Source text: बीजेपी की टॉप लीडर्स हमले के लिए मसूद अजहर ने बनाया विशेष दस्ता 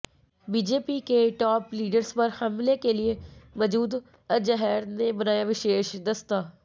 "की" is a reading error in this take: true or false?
true